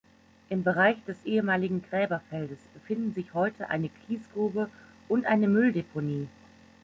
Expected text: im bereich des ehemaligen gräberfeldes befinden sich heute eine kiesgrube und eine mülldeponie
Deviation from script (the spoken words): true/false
false